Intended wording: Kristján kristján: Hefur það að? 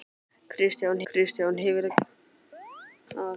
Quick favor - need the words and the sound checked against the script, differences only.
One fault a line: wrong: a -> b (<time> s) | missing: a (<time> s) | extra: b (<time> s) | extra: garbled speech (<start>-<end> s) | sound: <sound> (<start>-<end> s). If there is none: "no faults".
sound: chirp (2.5-3.0 s)